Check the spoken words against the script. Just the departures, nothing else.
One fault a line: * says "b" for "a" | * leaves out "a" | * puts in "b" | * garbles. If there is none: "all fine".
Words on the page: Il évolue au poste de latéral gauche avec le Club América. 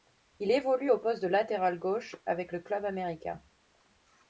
all fine